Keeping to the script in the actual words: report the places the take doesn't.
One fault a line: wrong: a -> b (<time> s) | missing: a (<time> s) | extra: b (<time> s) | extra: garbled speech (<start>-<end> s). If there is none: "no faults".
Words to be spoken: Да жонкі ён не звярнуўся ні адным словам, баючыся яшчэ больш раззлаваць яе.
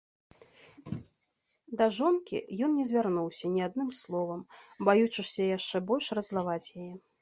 no faults